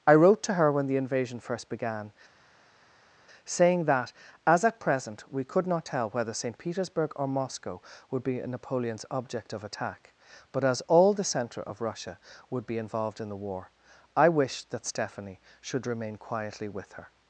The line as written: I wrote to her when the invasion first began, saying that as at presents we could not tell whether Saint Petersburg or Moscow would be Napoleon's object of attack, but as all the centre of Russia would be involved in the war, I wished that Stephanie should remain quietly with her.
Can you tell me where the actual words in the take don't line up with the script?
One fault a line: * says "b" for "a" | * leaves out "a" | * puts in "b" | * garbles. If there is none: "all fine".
* says "present" for "presents"